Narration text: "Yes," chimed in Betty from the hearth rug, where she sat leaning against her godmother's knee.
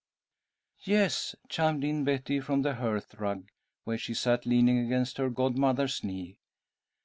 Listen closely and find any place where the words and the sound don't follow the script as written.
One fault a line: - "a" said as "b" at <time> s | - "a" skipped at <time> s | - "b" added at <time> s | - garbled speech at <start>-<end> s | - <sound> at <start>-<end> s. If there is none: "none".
none